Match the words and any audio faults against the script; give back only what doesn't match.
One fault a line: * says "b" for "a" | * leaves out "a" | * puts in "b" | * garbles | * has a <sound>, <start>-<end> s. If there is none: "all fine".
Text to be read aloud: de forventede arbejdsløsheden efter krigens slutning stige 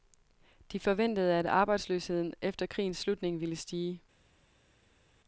* puts in "at"
* puts in "ville"